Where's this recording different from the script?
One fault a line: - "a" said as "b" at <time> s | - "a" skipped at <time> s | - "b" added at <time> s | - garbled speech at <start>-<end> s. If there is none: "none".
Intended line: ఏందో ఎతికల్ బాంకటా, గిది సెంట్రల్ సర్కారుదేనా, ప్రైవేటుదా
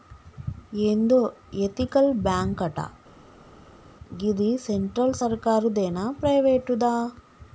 none